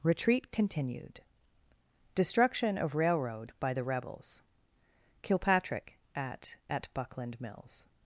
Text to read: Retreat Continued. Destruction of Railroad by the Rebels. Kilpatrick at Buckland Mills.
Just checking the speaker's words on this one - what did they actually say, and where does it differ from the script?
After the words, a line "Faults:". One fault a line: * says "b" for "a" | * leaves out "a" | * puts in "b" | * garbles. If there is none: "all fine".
Retreat Continued. Destruction of Railroad by the Rebels. Kilpatrick at at Buckland Mills.
Faults:
* puts in "at"